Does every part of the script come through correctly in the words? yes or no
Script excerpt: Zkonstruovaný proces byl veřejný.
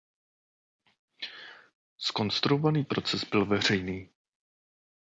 yes